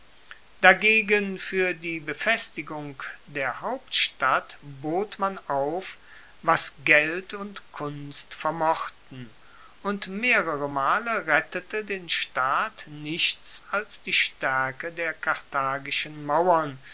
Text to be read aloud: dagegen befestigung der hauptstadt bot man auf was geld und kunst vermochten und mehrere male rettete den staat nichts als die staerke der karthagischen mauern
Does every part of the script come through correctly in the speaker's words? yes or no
no